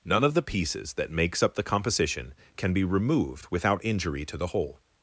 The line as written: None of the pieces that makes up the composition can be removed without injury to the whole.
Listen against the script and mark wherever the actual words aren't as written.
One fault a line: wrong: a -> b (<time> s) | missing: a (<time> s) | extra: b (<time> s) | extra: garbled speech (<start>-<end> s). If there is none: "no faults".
no faults